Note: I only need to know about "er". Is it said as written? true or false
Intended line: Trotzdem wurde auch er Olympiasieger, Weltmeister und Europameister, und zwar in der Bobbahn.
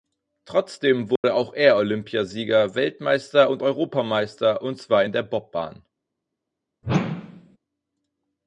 true